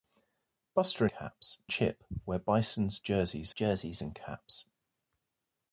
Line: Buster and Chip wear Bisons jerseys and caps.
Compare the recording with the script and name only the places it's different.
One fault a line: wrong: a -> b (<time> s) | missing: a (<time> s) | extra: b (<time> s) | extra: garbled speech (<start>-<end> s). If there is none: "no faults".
wrong: and -> caps (1.1 s)
extra: jerseys (3.5 s)